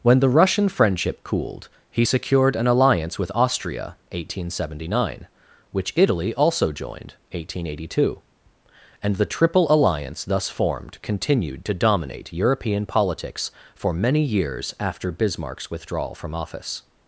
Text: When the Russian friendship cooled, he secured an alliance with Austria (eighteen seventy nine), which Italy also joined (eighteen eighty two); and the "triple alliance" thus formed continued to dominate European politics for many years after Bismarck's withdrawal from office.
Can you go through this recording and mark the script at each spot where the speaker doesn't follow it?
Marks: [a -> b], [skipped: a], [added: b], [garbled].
When the Russian friendship cooled, he secured an alliance with Austria (eighteen seventy nine), which Italy also joined (eighteen eighty two); and the "triple alliance" thus formed continued to dominate European politics for many years after Bismarck's withdrawal from office.